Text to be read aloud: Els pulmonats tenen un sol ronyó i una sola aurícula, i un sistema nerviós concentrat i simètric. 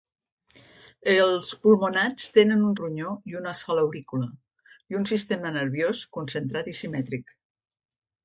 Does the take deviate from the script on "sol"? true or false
true